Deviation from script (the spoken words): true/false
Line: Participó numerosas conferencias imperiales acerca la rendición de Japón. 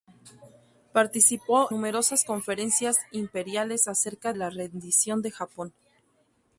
false